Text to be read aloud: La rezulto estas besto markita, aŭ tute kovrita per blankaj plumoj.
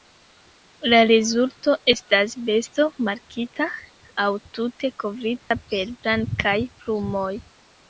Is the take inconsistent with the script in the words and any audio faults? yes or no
yes